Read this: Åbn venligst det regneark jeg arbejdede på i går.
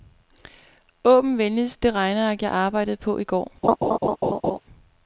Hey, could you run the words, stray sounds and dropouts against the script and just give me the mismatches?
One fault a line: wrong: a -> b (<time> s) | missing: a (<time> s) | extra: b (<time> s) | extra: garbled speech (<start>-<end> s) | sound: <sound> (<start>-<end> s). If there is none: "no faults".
sound: laugh (3.6-4.6 s)